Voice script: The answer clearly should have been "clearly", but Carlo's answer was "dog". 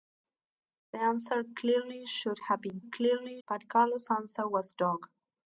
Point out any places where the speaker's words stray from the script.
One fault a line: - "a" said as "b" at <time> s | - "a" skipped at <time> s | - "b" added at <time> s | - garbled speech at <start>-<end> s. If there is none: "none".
none